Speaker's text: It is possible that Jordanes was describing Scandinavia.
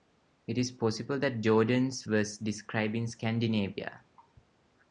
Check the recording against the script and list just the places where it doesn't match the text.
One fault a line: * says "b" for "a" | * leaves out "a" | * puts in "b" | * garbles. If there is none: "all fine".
all fine